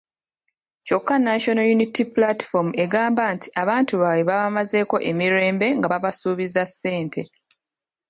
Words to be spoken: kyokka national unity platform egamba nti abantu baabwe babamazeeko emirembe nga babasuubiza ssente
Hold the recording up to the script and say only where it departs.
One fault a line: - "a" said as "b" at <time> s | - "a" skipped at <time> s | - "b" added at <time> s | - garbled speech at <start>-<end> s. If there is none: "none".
none